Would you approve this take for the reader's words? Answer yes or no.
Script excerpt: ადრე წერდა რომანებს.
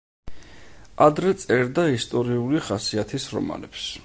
no